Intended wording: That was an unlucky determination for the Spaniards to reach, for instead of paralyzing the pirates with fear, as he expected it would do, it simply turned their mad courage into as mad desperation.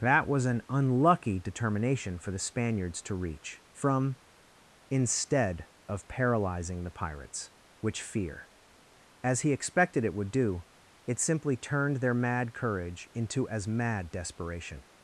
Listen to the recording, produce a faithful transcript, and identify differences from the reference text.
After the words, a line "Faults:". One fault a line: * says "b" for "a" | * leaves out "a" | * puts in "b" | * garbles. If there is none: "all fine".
That was an unlucky determination for the Spaniards to reach, from instead of paralyzing the pirates which fear, as he expected it would do, it simply turned their mad courage into as mad desperation.
Faults:
* says "from" for "for"
* says "which" for "with"